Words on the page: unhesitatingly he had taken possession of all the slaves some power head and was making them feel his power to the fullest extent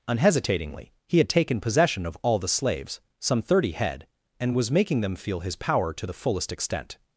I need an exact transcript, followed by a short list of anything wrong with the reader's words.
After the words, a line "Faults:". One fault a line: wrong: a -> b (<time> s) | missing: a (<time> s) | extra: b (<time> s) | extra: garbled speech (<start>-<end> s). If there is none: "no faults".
unhesitatingly he had taken possession of all the slaves some thirty head and was making them feel his power to the fullest extent
Faults:
wrong: power -> thirty (3.4 s)